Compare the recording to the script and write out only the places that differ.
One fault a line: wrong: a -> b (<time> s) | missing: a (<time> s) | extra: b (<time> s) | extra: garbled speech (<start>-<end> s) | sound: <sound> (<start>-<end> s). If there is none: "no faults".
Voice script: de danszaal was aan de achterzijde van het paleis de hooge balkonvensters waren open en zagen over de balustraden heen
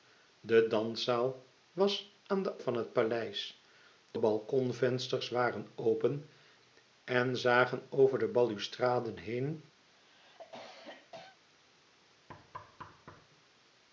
missing: achterzijde (2.6 s)
missing: hooge (4.2 s)
sound: cough (9.8-11.4 s)
sound: thud (12.3-13.3 s)